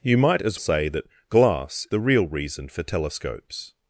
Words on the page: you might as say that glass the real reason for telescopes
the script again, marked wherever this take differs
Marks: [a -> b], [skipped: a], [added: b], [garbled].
you might as say that glass the real reason for telescopes